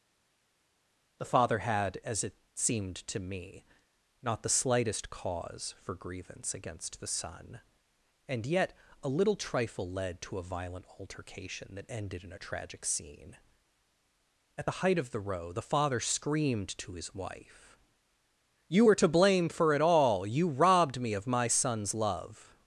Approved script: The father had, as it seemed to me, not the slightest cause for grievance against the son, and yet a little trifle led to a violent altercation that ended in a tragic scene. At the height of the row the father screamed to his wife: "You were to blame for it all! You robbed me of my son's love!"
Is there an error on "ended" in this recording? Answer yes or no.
no